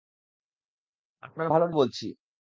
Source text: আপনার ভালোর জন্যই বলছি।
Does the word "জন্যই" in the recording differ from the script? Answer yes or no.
yes